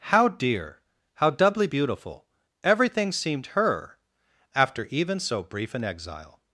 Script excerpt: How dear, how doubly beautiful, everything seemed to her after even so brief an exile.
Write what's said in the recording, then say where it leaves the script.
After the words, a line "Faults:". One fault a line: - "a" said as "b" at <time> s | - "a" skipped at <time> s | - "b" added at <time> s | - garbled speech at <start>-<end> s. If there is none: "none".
How dear, how doubly beautiful, everything seemed her after even so brief an exile.
Faults:
- "to" skipped at 3.5 s